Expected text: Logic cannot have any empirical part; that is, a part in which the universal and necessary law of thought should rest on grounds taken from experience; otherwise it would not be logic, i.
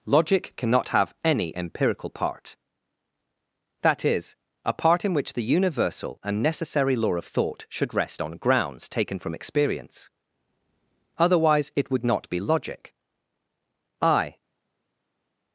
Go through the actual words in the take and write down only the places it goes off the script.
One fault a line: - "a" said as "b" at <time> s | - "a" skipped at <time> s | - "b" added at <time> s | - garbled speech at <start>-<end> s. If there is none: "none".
none